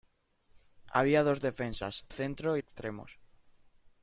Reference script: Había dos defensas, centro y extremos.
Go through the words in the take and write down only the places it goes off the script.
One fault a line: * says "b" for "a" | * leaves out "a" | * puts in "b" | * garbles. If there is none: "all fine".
all fine